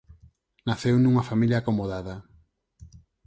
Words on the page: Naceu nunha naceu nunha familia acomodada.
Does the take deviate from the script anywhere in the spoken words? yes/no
yes